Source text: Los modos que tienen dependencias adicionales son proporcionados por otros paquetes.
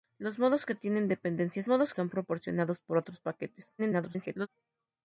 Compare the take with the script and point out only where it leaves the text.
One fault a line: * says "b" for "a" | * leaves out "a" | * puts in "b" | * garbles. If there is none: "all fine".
* says "modos" for "adicionales"
* garbles